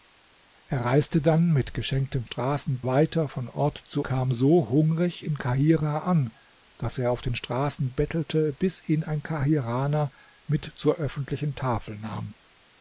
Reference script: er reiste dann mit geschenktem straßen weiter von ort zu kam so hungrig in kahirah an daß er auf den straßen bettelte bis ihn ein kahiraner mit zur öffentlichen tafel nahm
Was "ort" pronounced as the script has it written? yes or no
yes